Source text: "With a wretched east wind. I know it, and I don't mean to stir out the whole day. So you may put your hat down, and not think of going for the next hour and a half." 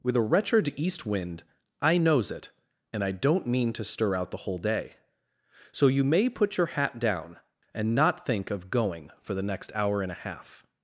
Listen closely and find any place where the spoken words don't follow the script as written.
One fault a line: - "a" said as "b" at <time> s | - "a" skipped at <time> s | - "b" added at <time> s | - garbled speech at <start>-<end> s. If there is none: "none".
- "know" said as "knows" at 2.0 s